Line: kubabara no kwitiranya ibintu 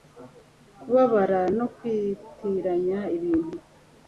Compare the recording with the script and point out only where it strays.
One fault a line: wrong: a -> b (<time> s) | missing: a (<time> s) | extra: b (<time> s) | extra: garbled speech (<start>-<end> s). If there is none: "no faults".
no faults